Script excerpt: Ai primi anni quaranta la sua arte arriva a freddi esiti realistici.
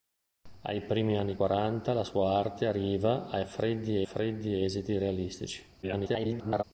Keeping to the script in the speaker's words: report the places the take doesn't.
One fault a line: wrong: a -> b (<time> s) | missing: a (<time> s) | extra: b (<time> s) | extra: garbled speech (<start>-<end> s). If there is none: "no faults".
extra: freddi (4.0 s)
extra: garbled speech (5.8-6.6 s)